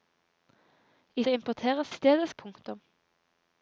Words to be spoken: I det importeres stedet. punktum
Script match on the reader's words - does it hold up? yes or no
yes